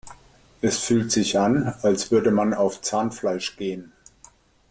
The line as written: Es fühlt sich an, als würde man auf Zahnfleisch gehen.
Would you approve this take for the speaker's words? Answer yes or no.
yes